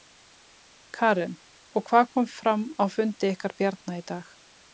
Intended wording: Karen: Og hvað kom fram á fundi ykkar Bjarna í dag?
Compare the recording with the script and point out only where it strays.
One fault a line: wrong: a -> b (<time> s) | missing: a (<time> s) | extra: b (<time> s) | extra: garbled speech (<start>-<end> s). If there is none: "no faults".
no faults